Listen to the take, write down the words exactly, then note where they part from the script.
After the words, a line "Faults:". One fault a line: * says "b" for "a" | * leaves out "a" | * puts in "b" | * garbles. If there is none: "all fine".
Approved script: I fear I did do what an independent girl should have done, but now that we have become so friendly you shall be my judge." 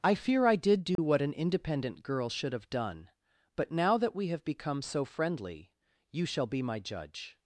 I fear I did do what an independent girl should have done, but now that we have become so friendly you shall be my judge."
Faults:
all fine